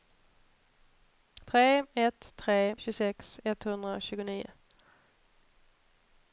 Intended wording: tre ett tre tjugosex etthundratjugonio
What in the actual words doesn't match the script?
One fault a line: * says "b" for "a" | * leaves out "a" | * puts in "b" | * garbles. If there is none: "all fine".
all fine